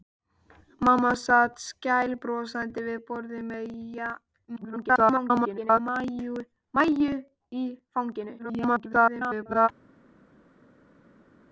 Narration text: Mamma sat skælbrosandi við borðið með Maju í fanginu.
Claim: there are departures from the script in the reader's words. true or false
true